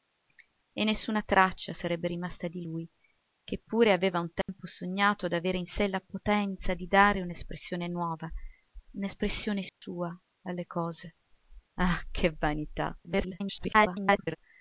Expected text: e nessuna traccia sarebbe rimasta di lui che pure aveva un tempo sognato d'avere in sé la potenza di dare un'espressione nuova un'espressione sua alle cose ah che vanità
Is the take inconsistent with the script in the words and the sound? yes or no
yes